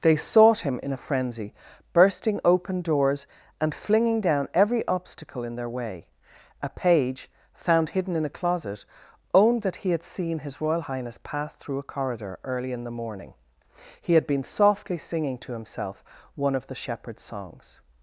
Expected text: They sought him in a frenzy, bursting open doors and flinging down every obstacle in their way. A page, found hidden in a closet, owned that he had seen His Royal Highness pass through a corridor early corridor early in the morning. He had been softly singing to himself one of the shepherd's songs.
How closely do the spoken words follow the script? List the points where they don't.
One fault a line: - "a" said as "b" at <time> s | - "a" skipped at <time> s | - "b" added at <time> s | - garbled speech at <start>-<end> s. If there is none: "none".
- "corridor early" skipped at 12.7 s